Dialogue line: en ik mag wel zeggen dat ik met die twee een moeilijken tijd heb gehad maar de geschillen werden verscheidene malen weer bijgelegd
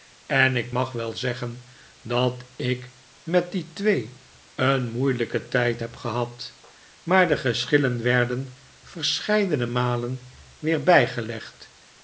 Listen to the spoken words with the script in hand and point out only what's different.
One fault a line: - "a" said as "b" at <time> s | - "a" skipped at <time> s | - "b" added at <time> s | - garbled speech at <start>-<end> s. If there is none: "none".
none